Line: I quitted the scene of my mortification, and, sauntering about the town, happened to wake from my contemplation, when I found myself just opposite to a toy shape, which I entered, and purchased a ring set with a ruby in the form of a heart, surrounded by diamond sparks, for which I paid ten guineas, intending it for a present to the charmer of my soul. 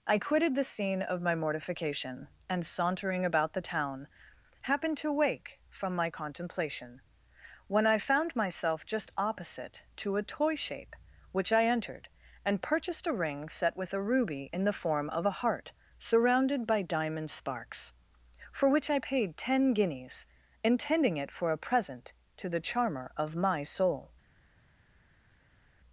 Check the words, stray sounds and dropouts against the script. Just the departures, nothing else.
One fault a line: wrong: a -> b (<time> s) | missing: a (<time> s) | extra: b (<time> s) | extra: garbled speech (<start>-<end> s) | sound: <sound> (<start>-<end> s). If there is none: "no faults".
no faults